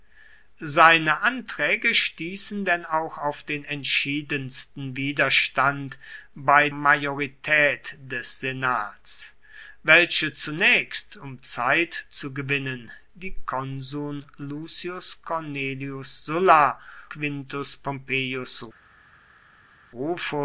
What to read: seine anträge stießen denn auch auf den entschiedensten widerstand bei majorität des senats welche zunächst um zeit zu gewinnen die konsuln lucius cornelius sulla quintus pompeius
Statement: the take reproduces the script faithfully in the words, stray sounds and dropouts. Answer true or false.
true